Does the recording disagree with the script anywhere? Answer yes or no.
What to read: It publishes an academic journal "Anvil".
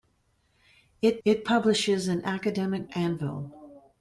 yes